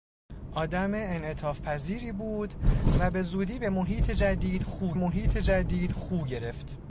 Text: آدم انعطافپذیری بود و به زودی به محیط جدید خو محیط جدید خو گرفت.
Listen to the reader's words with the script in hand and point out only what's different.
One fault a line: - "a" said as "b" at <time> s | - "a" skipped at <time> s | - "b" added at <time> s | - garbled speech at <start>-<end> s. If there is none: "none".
none